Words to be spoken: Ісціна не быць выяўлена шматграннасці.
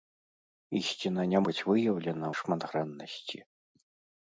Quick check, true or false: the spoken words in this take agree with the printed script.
true